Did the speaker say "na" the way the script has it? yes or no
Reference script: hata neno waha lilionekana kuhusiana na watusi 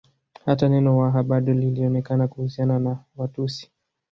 yes